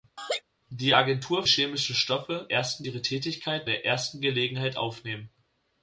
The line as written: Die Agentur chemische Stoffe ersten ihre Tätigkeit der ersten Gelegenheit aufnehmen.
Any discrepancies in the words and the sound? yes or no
yes